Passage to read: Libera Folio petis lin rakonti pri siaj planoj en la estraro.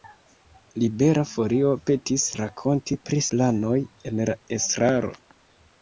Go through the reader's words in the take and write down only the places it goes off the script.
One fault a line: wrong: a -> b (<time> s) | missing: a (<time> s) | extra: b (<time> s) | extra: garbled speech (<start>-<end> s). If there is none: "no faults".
missing: lin (2.2 s)
missing: siaj (3.2 s)